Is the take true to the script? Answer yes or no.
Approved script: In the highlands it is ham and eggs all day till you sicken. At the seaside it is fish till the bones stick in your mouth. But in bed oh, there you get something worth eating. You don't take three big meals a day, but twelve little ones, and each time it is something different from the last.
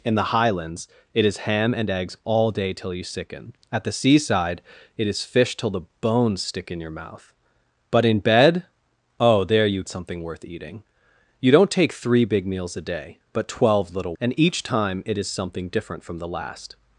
no